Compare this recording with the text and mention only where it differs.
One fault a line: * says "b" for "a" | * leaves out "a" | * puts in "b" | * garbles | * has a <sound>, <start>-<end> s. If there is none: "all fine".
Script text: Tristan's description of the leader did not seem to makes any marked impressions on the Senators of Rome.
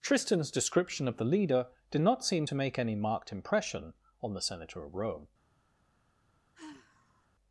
* says "make" for "makes"
* says "impression" for "impressions"
* says "Senator" for "Senators"
* has a sigh, 6.5-7.3 s